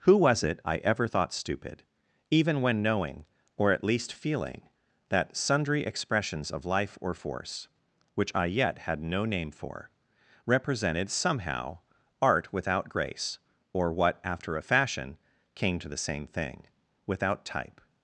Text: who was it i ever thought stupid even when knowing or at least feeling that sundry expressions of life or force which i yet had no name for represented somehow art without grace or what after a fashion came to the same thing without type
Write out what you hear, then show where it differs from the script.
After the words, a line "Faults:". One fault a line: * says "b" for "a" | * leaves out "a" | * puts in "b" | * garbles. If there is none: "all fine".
who was it i ever thought stupid even when knowing or at least feeling that sundry expressions of life or force which i yet had no name for represented somehow art without grace or what after a fashion came to the same thing without type
Faults:
all fine